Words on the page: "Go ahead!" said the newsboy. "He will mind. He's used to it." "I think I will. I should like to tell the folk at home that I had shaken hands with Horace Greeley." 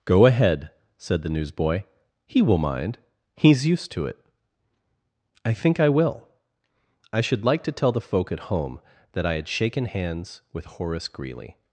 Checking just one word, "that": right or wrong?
right